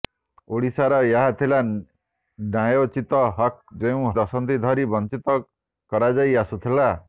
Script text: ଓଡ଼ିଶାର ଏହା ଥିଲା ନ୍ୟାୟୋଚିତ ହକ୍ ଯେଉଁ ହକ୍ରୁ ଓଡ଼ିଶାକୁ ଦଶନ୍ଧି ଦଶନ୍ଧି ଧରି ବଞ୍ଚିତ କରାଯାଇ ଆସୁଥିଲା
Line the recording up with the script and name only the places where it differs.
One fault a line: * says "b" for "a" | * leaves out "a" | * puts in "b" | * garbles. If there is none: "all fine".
* leaves out "ହକ୍ରୁ ଓଡ଼ିଶାକୁ ଦଶନ୍ଧି"